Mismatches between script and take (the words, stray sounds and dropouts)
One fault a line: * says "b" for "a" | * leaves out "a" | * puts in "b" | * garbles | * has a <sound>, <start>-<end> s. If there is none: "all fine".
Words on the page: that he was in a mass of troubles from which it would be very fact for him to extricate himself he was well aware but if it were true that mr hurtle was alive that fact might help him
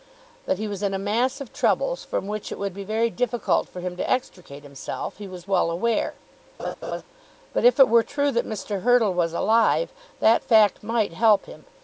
* says "difficult" for "fact"
* has a laugh, 6.6-7.0 s